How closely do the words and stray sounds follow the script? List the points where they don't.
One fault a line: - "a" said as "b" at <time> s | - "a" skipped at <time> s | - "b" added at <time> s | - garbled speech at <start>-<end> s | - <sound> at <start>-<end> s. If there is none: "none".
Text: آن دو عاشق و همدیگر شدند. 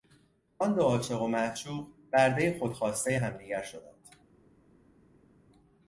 - "معشوق بردهی خودخواستهی" added at 1.3 s